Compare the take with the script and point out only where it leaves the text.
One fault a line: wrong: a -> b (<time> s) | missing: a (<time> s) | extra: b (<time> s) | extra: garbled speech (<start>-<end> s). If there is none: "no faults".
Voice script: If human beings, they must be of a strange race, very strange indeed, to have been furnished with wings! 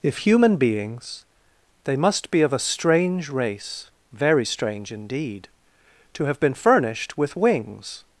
no faults